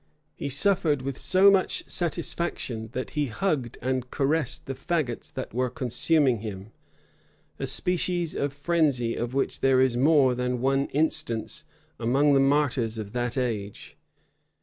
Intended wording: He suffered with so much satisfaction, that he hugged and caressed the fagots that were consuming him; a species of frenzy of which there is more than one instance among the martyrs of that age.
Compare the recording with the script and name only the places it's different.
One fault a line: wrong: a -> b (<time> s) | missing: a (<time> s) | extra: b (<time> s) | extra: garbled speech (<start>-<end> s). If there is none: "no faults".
no faults